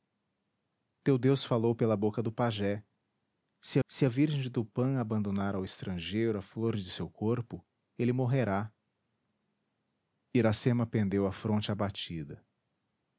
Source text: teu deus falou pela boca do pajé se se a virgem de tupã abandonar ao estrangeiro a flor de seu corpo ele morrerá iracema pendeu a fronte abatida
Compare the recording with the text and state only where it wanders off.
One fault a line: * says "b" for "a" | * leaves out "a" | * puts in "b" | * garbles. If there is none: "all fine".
all fine